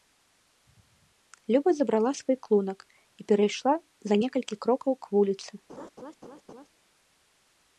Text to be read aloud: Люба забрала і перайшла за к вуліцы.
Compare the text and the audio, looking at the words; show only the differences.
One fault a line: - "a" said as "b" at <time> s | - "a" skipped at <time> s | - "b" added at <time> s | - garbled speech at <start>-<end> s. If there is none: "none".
- "свой клунак" added at 2.2 s
- "некалькі крокаў" added at 4.2 s